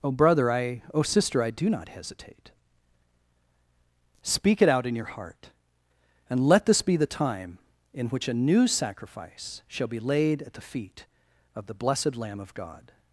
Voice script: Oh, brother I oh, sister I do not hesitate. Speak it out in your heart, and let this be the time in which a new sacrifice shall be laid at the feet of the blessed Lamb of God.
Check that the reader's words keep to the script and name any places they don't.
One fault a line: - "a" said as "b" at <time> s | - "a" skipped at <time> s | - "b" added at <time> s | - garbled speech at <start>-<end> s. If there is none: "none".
none